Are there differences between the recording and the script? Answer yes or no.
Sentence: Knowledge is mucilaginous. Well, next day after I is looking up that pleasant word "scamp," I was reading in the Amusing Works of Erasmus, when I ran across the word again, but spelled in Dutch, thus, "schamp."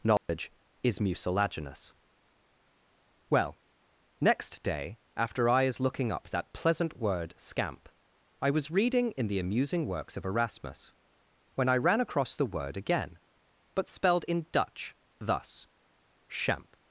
no